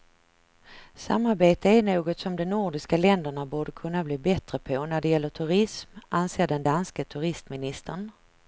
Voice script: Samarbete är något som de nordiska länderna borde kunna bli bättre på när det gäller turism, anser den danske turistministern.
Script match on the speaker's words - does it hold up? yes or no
yes